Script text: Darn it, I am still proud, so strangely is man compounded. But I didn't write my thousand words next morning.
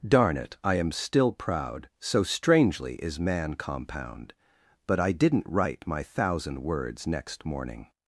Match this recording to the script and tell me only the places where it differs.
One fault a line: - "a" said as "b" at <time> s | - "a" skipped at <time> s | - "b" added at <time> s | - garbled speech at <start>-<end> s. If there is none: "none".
- "compounded" said as "compound" at 3.5 s